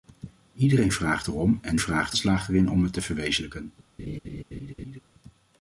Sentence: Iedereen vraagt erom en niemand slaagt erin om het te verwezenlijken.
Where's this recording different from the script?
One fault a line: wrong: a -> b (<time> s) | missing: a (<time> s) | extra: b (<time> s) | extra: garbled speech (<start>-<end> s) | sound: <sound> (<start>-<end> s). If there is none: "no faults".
wrong: niemand -> vraagt (1.8 s)
sound: laugh (4.0-5.0 s)